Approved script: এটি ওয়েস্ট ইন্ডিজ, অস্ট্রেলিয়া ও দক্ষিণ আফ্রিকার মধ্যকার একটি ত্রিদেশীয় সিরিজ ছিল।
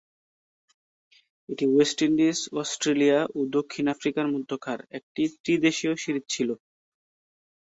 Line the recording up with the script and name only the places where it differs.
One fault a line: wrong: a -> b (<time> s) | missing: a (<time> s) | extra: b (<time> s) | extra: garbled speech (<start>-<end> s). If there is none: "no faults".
no faults